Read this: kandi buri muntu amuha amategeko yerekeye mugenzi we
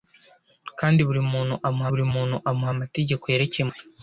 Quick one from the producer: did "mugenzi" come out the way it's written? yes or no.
no